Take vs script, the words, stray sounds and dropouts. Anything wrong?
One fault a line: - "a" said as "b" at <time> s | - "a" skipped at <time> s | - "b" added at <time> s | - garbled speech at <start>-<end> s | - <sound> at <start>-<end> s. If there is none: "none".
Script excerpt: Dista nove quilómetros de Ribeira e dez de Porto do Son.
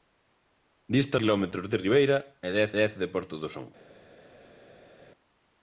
- "nove" skipped at 1.2 s
- "dez" added at 2.8 s